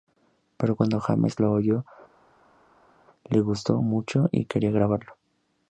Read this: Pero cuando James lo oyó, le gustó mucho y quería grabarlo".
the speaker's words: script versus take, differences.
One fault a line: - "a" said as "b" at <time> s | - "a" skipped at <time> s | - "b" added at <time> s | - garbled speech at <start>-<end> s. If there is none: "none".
none